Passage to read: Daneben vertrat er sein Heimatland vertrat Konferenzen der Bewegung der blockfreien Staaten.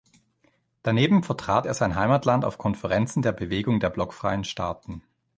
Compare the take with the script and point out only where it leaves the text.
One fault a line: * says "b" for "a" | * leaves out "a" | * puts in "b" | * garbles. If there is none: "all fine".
* says "auf" for "vertrat"